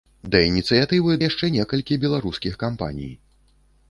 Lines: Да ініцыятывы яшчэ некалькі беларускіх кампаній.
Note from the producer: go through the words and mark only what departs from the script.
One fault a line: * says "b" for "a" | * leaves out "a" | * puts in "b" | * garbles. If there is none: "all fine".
all fine